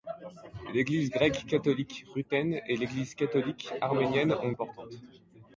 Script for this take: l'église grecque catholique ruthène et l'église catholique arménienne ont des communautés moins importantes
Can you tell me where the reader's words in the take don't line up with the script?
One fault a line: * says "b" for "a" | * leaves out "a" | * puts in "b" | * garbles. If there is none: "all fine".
* leaves out "des communautés moins"